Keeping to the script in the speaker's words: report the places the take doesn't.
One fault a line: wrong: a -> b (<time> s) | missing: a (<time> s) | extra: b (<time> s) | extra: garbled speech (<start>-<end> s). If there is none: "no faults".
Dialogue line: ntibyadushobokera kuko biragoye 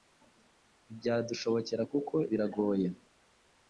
no faults